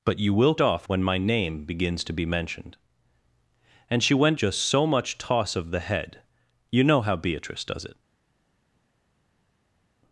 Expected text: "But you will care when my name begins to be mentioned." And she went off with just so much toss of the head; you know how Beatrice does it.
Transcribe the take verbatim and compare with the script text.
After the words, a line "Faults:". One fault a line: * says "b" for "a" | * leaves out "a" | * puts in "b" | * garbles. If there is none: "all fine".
"But you will off when my name begins to be mentioned." And she went just so much toss of the head; you know how Beatrice does it.
Faults:
* says "off" for "care"
* leaves out "off with"